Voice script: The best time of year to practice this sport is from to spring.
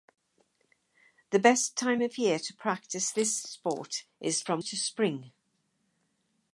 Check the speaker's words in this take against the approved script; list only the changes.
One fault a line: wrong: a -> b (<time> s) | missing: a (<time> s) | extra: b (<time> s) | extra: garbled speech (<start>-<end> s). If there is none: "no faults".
no faults